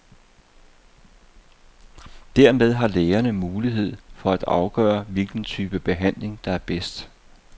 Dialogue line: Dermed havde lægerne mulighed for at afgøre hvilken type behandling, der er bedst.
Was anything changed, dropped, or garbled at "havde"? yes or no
yes